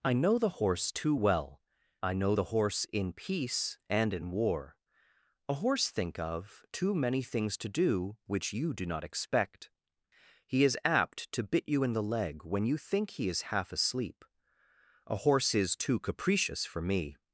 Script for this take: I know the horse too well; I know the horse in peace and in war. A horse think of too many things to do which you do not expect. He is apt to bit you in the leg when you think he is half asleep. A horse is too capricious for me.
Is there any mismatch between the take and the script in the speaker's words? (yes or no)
no